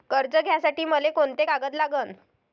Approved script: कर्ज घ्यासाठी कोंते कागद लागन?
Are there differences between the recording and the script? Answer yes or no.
yes